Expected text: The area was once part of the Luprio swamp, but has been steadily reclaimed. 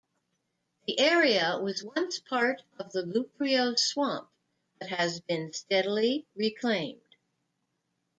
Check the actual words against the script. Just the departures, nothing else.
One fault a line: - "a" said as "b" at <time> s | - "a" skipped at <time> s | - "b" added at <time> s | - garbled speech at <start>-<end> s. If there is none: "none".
none